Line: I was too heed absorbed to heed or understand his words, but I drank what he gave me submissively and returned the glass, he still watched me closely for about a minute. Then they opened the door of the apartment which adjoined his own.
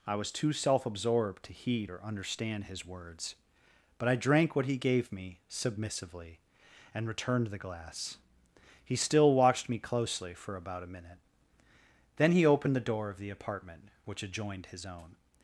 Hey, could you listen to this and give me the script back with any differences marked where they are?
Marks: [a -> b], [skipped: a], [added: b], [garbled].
I was too [heed -> self] absorbed to heed or understand his words, but I drank what he gave me submissively and returned the glass, he still watched me closely for about a minute. Then [they -> he] opened the door of the apartment which adjoined his own.